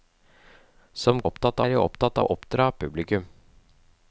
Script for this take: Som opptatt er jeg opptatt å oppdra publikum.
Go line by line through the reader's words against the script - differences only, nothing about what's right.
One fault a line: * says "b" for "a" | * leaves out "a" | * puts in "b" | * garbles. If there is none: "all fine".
all fine